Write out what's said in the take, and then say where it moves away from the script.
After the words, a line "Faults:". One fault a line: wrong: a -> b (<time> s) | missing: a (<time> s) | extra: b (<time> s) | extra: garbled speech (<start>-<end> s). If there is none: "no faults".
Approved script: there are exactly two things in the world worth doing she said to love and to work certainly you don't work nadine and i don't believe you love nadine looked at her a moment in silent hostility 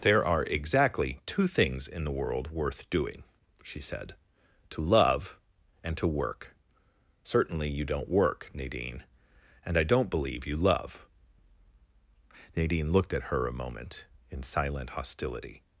there are exactly two things in the world worth doing she said to love and to work certainly you don't work nadine and i don't believe you love nadine looked at her a moment in silent hostility
Faults:
no faults